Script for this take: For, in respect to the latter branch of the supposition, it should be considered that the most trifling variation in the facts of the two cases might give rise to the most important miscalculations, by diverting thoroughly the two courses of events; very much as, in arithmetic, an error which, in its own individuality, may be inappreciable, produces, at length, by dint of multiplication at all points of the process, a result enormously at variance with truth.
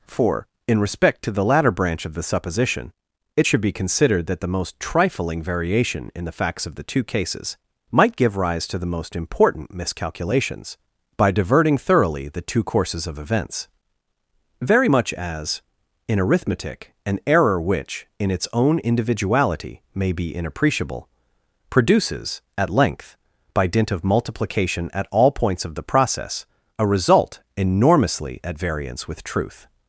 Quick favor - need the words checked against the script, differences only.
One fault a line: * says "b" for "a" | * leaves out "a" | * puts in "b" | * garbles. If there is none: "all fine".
all fine